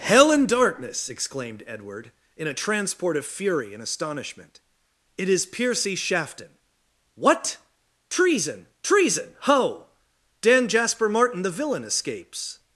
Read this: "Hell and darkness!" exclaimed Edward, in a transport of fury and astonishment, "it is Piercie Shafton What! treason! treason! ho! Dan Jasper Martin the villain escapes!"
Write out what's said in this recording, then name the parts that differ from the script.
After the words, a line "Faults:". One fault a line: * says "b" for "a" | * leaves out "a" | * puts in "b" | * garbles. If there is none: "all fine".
"Hell and darkness!" exclaimed Edward, in a transport of fury and astonishment, "it is Piercie Shafton What! treason! treason! ho! Dan Jasper Martin the villain escapes!"
Faults:
all fine